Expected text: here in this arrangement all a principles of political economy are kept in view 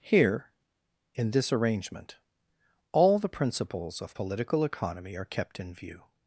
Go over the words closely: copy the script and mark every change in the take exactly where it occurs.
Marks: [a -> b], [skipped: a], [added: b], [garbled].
here in this arrangement all [a -> the] principles of political economy are kept in view